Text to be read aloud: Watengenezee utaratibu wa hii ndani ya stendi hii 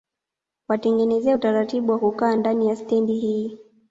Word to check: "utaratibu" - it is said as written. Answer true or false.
true